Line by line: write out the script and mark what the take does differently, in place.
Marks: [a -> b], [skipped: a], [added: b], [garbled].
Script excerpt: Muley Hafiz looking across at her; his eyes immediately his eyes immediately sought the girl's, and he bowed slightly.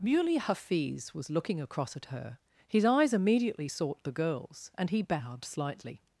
Muley Hafiz [added: was] looking across at her; his eyes immediately [skipped: his eyes immediately] sought the girl's, and he bowed slightly.